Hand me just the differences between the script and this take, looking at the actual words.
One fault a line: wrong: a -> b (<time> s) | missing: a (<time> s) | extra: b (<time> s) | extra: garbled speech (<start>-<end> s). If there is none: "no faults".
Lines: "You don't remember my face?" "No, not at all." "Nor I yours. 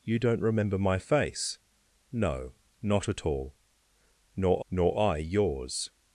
extra: nor (4.7 s)